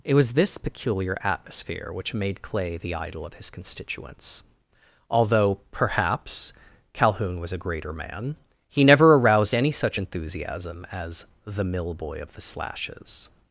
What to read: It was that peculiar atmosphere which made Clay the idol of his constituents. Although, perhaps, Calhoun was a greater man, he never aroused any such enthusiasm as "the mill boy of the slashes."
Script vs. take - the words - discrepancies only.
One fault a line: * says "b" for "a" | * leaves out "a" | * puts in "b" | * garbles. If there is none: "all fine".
* says "this" for "that"